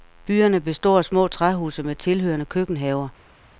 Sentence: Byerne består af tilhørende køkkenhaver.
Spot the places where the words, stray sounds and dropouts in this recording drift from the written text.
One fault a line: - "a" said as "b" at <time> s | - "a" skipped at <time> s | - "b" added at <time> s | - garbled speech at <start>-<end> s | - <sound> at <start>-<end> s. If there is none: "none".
- "små træhuse med" added at 1.1 s